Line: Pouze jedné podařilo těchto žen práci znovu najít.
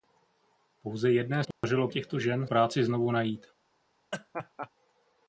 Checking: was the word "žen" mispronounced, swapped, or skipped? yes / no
no